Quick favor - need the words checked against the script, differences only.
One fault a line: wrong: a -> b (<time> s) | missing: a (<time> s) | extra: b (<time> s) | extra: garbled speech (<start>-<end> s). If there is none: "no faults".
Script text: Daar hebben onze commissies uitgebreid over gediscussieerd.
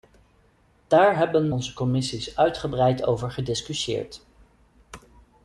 no faults